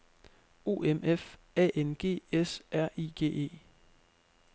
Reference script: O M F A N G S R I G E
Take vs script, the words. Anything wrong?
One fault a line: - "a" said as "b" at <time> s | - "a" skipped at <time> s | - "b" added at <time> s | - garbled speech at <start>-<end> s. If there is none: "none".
none